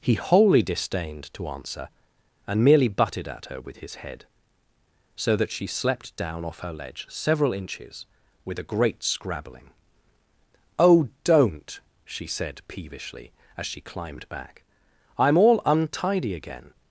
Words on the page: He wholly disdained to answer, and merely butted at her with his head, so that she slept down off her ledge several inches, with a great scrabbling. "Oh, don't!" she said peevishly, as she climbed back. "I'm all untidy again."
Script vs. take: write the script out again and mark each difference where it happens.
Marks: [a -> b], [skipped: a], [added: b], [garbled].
He wholly disdained to answer, and merely butted at her with his head, so that she slept down off her ledge several inches, with a great scrabbling. "Oh, don't!" she said peevishly, as she climbed back. "I'm all untidy again."